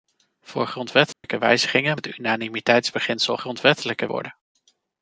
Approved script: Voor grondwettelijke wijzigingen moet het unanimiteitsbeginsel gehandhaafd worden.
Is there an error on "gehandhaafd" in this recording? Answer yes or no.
yes